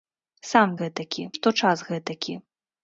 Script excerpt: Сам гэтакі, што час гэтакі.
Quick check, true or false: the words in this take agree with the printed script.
true